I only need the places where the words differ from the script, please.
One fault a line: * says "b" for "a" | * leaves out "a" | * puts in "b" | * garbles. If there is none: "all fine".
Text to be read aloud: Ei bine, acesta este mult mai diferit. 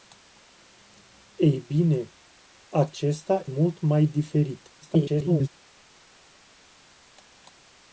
* leaves out "este"
* garbles